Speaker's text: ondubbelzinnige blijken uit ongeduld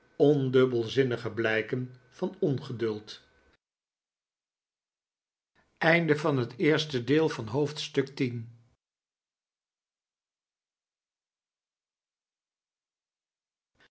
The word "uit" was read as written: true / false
false